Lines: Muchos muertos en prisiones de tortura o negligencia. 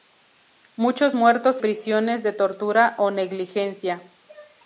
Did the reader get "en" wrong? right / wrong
wrong